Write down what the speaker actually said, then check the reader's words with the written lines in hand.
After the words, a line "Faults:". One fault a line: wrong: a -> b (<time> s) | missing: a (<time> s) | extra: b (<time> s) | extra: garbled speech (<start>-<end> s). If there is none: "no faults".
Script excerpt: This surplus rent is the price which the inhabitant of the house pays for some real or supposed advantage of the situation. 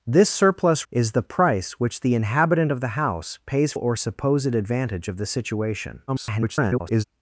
This surplus is the price which the inhabitant of the house pays or supposed advantage of the situation. [garbled]
Faults:
missing: rent (0.9 s)
missing: for some real (3.7 s)
extra: garbled speech (6.1-7.0 s)